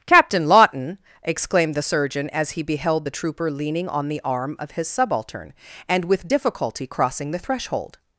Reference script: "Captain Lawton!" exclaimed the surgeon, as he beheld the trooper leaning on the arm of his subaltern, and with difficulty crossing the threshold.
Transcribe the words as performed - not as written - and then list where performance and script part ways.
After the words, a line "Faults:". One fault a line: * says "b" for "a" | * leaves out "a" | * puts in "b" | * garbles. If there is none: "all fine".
"Captain Lawton!" exclaimed the surgeon, as he beheld the trooper leaning on the arm of his subaltern, and with difficulty crossing the threshold.
Faults:
all fine